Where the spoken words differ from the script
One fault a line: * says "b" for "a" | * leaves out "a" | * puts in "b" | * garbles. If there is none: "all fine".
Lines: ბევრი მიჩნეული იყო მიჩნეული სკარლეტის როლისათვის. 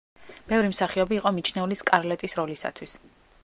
* says "მსახიობი" for "მიჩნეული"